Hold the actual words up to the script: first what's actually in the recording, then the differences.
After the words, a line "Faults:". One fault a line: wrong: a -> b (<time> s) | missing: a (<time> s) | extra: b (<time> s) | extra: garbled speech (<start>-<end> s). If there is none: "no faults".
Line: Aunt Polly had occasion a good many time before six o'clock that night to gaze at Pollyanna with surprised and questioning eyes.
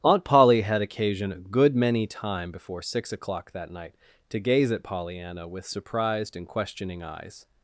Aunt Polly had occasion a good many time before six o'clock that night to gaze at Pollyanna with surprised and questioning eyes.
Faults:
no faults